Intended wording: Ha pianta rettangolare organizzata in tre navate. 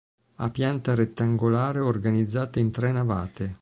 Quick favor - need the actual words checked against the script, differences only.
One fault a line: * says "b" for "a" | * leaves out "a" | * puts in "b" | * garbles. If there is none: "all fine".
all fine